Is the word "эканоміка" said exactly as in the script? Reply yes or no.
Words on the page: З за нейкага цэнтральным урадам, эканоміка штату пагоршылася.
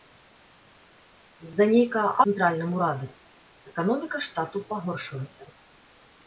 yes